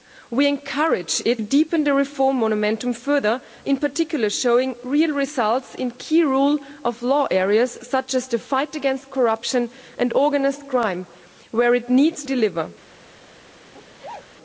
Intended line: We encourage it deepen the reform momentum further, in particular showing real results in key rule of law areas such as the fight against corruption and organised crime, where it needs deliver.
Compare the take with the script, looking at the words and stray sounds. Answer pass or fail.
fail